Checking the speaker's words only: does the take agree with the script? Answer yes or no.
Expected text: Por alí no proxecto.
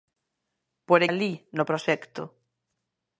yes